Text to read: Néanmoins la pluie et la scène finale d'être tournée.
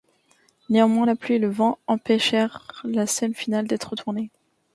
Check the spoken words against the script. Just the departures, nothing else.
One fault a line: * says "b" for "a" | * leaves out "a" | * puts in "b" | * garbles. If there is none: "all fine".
* puts in "le vent empêchèrent"